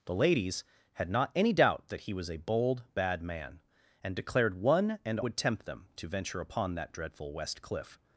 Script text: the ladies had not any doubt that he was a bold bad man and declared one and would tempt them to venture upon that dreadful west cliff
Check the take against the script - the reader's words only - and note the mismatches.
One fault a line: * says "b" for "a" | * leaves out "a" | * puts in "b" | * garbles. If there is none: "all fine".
all fine